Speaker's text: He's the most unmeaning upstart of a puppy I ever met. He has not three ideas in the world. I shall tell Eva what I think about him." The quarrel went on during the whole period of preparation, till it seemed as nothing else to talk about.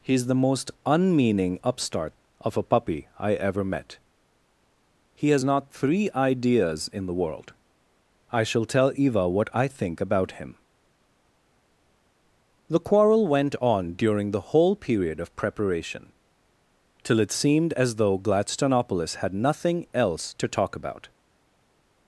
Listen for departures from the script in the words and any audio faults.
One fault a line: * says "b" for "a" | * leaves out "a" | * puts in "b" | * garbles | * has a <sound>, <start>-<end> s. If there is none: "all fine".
* puts in "though Gladstonopolis had"